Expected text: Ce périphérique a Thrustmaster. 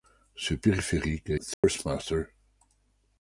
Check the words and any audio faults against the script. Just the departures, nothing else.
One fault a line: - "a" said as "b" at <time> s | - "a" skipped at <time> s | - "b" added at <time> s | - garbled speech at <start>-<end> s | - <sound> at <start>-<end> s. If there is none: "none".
- dropout at 1.5-1.6 s